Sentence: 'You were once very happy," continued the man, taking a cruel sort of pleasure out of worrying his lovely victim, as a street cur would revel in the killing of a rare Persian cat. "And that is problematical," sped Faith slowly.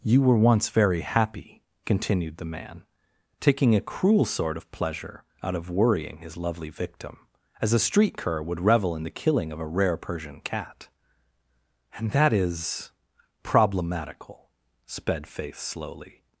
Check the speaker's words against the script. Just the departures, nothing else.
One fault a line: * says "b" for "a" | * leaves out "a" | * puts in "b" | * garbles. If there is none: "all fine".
all fine